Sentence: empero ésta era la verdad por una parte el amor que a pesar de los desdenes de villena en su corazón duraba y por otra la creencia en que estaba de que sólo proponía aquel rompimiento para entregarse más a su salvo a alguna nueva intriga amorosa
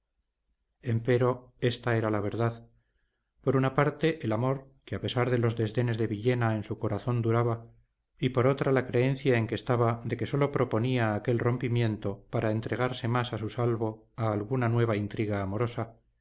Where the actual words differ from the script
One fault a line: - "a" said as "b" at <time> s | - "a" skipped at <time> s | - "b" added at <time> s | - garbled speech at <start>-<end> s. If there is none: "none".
none